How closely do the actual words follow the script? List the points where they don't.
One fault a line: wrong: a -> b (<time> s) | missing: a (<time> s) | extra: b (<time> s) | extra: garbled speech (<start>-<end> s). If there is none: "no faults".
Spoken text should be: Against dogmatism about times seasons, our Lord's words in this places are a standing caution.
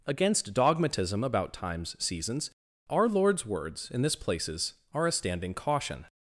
no faults